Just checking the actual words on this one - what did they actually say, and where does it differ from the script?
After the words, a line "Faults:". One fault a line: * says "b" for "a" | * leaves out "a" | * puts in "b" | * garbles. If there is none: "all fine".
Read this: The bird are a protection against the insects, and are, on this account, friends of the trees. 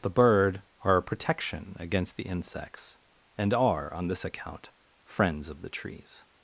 The bird are a protection against the insects, and are, on this account, friends of the trees.
Faults:
all fine